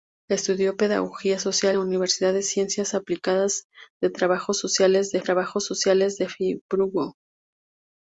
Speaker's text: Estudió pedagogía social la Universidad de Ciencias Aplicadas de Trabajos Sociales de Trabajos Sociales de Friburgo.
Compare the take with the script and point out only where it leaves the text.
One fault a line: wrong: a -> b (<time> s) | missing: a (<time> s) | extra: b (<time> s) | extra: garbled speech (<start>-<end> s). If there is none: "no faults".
no faults